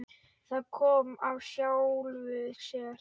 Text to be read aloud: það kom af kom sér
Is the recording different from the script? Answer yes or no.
yes